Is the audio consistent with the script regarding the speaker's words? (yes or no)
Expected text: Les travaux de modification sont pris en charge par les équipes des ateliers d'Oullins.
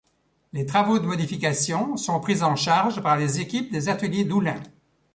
yes